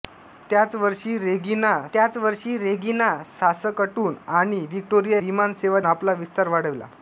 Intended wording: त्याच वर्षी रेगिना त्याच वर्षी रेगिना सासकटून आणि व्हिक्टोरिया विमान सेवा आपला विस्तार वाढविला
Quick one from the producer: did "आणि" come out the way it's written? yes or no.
yes